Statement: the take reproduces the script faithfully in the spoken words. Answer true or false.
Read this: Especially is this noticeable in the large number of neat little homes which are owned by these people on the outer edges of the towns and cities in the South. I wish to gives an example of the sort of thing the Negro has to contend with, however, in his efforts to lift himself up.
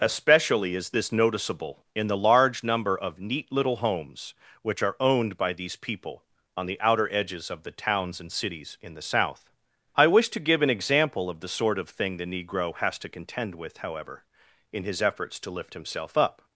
false